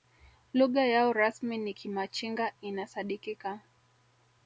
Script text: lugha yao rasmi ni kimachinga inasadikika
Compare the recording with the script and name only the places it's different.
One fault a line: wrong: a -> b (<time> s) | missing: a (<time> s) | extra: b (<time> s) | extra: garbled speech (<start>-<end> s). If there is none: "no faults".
no faults